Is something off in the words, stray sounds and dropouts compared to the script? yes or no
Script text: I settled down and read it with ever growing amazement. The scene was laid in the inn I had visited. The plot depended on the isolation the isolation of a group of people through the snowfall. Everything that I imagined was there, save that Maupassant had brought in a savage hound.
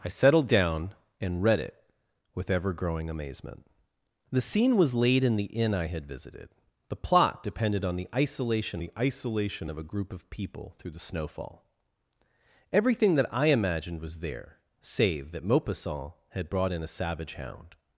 no